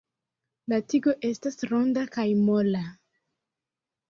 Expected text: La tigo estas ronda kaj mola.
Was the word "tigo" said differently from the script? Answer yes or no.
no